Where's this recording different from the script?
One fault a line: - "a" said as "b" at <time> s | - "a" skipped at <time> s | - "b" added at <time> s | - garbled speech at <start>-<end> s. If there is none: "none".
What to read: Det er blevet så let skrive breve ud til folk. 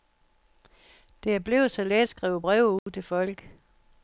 none